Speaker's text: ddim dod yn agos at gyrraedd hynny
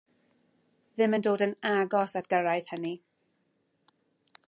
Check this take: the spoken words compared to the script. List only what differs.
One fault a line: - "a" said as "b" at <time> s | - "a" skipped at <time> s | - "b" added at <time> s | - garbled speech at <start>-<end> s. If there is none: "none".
- "yn" added at 1.1 s